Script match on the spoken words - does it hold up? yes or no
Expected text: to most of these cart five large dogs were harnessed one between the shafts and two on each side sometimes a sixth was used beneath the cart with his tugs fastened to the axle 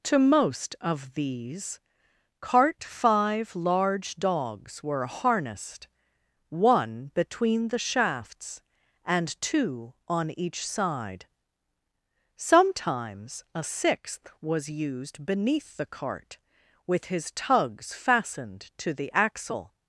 yes